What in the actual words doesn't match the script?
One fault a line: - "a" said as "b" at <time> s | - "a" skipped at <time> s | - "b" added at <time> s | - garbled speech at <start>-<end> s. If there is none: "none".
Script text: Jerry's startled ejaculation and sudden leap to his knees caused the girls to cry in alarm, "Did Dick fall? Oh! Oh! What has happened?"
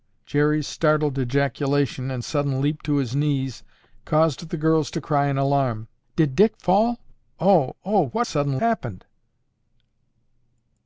- "has" said as "sudden" at 8.3 s